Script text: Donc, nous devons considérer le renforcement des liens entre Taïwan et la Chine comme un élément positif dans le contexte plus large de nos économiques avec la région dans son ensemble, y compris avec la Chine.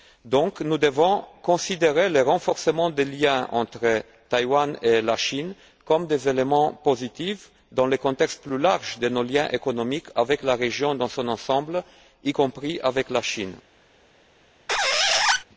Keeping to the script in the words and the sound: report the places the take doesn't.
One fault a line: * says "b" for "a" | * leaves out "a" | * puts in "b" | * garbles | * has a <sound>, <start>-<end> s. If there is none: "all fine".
* puts in "liens"
* has a squeak, 14.7-15.4 s